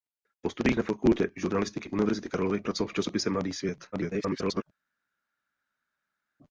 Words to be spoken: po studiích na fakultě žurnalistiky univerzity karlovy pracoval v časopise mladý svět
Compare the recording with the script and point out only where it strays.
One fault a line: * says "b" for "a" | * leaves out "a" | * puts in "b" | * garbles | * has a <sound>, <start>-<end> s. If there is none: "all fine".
* garbles